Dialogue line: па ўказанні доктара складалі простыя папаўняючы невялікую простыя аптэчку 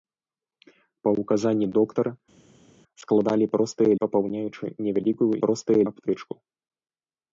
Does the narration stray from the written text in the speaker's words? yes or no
no